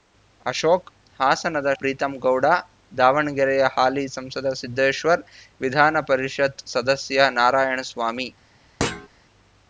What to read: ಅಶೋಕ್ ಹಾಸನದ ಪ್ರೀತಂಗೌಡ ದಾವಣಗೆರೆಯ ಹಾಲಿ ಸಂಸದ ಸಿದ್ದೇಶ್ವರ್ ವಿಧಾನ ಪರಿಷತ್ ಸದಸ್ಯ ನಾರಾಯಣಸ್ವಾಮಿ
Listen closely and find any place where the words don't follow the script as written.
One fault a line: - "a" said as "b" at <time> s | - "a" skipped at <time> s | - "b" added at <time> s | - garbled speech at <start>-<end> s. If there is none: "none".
none